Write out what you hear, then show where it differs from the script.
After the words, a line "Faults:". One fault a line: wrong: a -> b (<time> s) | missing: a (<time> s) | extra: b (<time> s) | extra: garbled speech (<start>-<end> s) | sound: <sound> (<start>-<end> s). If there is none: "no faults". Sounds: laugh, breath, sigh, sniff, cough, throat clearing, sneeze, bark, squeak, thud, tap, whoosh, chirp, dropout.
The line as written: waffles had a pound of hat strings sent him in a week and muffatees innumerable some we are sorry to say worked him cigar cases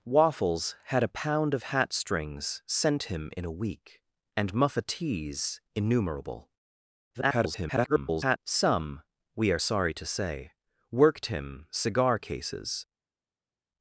waffles had a pound of hat strings sent him in a week and muffatees innumerable [garbled] some we are sorry to say worked him cigar cases
Faults:
extra: garbled speech (7.1-8.4 s)